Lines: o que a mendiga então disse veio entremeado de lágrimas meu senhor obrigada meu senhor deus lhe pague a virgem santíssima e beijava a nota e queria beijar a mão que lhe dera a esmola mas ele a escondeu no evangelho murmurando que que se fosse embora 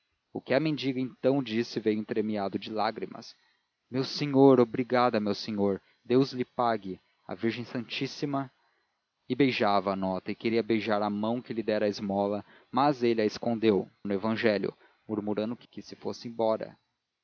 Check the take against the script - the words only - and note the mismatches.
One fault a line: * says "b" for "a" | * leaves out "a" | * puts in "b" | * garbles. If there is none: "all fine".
all fine